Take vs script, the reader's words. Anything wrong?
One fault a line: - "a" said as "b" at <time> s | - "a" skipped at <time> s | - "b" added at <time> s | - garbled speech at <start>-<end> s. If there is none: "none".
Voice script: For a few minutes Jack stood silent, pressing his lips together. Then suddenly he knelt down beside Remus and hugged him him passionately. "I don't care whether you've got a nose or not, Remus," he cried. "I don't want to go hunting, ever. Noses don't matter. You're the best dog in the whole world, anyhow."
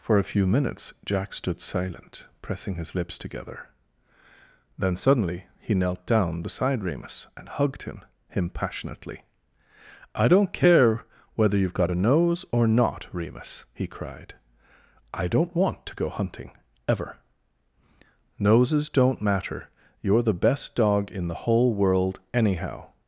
none